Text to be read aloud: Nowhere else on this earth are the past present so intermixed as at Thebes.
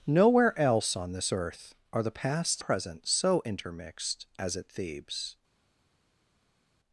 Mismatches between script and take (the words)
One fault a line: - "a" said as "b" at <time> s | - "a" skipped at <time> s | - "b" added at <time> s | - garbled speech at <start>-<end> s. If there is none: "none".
none